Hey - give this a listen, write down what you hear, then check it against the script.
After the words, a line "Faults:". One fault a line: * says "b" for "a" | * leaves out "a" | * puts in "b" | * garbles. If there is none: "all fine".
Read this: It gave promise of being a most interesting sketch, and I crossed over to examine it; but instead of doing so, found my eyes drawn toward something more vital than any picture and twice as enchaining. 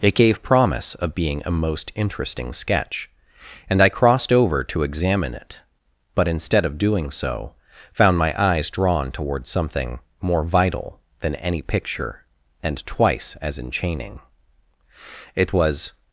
It gave promise of being a most interesting sketch, and I crossed over to examine it; but instead of doing so, found my eyes drawn toward something more vital than any picture and twice as enchaining. It was
Faults:
* puts in "It was"